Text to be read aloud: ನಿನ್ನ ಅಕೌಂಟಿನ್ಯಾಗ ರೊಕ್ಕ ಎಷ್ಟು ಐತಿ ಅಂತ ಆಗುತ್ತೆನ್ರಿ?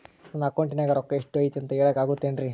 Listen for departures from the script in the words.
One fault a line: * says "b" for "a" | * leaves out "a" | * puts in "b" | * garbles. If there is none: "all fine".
* says "ನನ್ನ" for "ನಿನ್ನ"
* puts in "ಹೇಳಕ"